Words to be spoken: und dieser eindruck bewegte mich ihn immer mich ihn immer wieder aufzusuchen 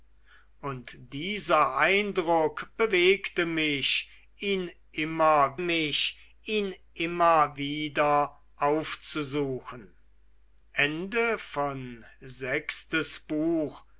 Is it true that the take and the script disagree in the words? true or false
false